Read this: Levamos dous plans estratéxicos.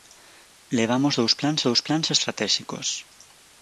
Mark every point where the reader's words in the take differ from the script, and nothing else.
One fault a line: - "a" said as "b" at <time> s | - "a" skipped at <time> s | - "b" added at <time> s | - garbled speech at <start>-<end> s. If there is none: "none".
- "dous plans" added at 1.7 s